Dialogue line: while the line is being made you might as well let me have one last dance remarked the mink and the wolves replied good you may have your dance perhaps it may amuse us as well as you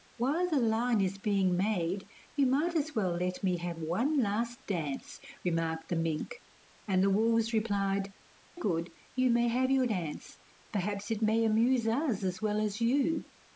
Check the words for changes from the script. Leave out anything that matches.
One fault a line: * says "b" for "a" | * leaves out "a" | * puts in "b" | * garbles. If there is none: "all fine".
all fine